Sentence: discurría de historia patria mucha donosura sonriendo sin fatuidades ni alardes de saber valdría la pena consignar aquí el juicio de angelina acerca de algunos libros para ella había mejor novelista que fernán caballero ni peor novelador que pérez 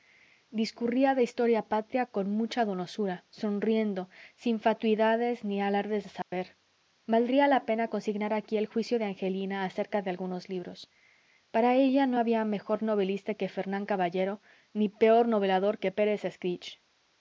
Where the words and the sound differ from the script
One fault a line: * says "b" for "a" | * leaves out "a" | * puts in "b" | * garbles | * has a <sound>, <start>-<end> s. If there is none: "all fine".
* puts in "con"
* has a dropout, 6.2-6.3 s
* puts in "no"